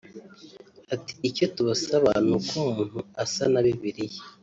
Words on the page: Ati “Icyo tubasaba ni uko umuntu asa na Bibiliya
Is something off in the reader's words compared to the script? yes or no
no